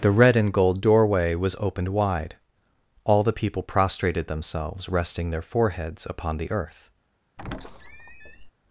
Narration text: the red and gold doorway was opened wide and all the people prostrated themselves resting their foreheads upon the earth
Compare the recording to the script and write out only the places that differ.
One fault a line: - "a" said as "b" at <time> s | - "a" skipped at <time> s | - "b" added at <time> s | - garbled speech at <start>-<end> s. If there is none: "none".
- "and" skipped at 2.4 s